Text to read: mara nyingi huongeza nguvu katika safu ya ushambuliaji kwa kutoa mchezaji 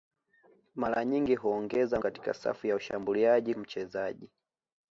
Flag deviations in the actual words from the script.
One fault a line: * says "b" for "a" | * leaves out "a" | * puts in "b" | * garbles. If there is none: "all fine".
* leaves out "nguvu"
* leaves out "kwa kutoa"